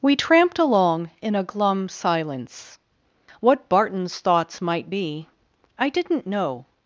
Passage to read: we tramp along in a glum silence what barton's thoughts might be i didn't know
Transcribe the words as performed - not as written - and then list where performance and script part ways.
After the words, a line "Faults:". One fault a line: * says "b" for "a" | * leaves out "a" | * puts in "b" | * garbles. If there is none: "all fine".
we tramped along in a glum silence what barton's thoughts might be i didn't know
Faults:
* says "tramped" for "tramp"